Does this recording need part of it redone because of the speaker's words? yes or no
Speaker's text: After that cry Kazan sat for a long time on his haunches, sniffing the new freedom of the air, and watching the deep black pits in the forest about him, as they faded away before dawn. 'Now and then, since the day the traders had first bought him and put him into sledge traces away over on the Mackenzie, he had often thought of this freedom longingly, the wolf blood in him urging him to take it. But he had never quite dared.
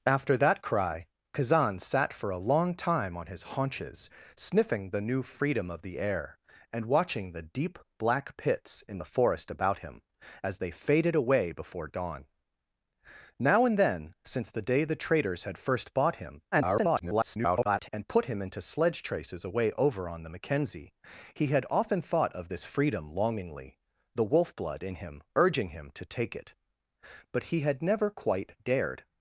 yes